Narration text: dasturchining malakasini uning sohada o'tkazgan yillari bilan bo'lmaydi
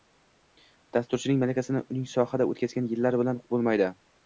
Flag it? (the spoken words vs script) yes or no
no